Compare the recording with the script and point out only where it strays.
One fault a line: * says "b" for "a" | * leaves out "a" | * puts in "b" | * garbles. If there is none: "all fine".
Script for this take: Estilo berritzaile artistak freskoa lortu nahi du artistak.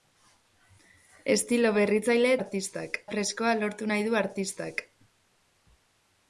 all fine